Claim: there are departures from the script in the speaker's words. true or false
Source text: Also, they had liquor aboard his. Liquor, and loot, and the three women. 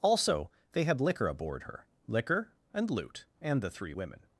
true